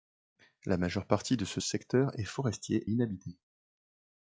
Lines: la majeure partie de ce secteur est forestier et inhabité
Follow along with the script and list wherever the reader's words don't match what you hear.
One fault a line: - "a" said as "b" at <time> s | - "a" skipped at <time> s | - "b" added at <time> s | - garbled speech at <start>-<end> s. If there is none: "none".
- "et" skipped at 2.9 s